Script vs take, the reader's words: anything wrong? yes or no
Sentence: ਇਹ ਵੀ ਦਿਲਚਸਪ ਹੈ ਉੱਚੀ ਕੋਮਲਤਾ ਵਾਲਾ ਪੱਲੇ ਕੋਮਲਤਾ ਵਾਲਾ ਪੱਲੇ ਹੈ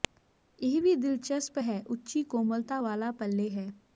yes